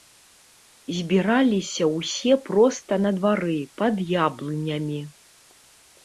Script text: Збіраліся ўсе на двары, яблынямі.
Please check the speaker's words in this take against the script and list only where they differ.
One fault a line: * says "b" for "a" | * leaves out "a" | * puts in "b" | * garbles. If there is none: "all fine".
* puts in "проста"
* puts in "пад"